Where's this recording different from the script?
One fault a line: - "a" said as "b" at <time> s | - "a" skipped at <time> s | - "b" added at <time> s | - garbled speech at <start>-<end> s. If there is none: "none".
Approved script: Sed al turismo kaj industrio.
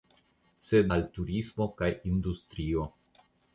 none